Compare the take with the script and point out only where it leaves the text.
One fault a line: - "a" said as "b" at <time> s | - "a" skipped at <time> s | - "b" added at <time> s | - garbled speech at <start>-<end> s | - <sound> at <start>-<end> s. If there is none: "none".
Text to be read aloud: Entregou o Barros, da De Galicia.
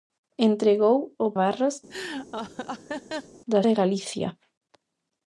- laugh at 1.9-3.4 s